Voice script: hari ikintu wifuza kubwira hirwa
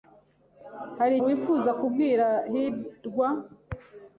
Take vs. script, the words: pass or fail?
fail